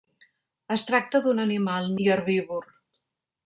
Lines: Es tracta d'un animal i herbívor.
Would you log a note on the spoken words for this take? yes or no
no